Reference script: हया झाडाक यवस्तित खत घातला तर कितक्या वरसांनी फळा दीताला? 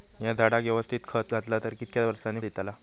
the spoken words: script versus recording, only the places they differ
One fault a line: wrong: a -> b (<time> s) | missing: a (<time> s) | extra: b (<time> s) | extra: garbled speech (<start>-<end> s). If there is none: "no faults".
missing: फळा (2.4 s)